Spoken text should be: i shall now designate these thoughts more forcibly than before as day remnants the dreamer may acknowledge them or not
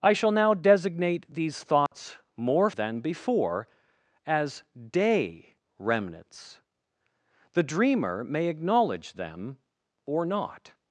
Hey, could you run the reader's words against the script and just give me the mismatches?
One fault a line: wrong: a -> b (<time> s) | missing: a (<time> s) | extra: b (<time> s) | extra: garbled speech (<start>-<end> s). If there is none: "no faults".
missing: forcibly (2.7 s)